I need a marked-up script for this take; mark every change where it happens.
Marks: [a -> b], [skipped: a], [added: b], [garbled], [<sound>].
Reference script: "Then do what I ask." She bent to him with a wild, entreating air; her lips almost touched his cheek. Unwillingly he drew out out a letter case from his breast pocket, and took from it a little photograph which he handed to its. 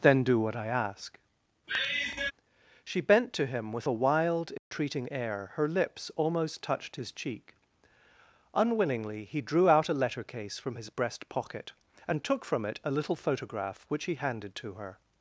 "Then do what I ask." [sigh] She bent to him with a wild, entreating [dropout] air; her lips almost touched his cheek. Unwillingly he drew out [skipped: out] a letter case from his breast pocket, and took from it a little photograph which he handed to [its. -> her]